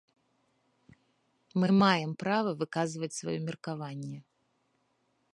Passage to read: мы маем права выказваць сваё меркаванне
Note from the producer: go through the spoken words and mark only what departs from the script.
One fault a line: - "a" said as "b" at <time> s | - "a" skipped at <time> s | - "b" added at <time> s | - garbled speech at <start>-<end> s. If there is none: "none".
none